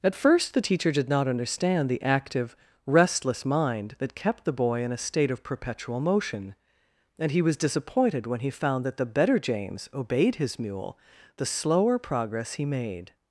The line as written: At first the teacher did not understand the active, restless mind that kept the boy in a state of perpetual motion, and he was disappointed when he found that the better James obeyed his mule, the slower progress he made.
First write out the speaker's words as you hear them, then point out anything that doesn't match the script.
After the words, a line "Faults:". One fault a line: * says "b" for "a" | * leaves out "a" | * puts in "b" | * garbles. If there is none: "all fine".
At first the teacher did not understand the active, restless mind that kept the boy in a state of perpetual motion, and he was disappointed when he found that the better James obeyed his mule, the slower progress he made.
Faults:
all fine